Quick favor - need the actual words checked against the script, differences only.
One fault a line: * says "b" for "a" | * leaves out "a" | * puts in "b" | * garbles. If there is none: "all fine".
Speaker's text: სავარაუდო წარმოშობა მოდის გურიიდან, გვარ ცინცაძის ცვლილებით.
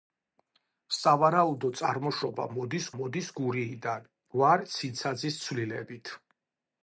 * puts in "მოდის"